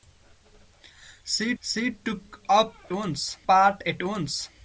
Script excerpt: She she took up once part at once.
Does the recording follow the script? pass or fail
pass